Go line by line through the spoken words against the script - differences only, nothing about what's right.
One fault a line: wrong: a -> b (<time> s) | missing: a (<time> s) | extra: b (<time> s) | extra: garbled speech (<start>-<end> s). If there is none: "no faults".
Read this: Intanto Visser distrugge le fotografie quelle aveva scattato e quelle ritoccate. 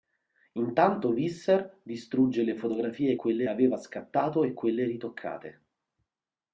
no faults